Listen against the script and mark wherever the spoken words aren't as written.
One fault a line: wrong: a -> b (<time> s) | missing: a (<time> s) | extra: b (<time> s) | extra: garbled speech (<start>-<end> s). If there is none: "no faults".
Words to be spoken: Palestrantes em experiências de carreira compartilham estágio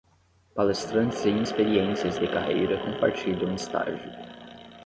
no faults